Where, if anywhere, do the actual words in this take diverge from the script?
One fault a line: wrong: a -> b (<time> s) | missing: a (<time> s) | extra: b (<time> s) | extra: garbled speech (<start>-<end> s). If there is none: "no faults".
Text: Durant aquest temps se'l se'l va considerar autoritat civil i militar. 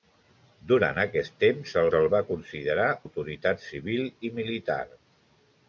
no faults